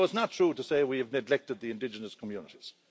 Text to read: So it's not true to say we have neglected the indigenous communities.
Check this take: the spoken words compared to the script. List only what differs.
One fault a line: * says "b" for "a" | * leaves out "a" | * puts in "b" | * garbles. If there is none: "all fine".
all fine